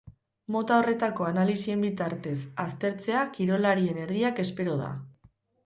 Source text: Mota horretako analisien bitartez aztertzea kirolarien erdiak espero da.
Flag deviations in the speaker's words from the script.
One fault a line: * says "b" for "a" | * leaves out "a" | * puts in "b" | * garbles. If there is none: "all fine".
all fine